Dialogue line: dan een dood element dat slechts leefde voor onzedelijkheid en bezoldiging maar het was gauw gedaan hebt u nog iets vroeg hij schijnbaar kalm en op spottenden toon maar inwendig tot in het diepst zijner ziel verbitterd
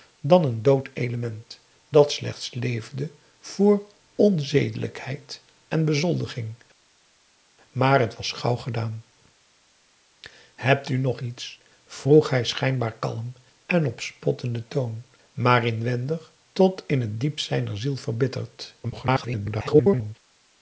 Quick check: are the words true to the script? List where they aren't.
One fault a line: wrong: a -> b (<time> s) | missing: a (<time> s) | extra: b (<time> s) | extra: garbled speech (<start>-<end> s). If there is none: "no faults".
extra: garbled speech (18.8-20.2 s)